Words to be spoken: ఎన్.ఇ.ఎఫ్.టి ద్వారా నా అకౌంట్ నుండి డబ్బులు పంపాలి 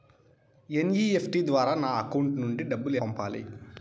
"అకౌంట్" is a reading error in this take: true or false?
false